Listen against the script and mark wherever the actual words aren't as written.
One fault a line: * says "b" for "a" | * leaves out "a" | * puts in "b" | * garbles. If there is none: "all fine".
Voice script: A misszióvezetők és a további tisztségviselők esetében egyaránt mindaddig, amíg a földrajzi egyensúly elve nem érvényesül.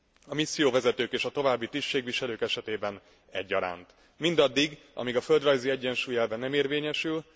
all fine